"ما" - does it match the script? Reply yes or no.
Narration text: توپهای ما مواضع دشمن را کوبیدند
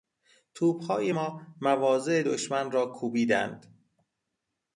yes